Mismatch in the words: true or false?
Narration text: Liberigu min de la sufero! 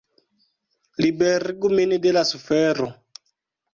false